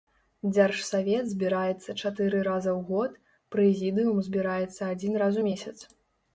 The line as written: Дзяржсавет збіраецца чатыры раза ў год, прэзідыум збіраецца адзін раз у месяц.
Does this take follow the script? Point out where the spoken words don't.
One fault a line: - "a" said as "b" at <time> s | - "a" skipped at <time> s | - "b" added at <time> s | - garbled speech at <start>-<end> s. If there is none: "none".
none